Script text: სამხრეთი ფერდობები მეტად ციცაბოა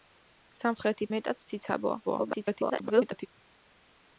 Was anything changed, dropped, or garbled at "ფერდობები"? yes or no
yes